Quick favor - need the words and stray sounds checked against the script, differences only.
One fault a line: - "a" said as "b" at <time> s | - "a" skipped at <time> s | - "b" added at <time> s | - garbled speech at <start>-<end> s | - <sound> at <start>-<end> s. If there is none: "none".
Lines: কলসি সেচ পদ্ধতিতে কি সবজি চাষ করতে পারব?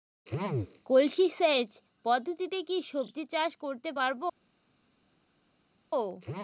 none